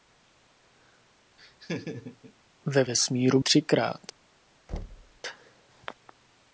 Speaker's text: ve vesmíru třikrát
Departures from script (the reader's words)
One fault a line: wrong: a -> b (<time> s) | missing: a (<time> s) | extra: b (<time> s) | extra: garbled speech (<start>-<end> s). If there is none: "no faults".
no faults